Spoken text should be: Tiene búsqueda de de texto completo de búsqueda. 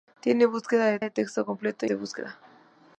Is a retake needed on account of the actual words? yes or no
no